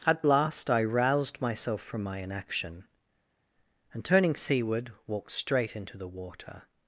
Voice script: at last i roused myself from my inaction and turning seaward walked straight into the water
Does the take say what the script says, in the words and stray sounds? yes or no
yes